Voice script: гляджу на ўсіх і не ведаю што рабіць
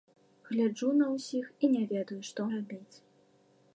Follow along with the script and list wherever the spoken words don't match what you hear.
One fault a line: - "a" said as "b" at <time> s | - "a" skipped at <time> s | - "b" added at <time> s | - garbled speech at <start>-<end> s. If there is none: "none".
none